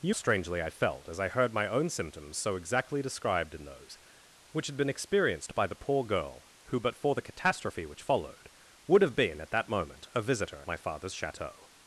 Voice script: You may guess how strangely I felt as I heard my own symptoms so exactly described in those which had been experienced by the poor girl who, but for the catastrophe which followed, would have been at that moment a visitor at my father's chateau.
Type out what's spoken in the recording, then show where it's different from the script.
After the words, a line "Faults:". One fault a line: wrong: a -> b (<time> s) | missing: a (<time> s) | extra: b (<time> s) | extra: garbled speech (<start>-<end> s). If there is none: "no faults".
You strangely I felt as I heard my own symptoms so exactly described in those which had been experienced by the poor girl who, but for the catastrophe which followed, would have been at that moment a visitor my father's chateau.
Faults:
missing: may guess how (0.1 s)
missing: at (10.6 s)